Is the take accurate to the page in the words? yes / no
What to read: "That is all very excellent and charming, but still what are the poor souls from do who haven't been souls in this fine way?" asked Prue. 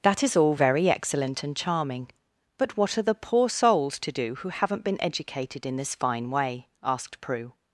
no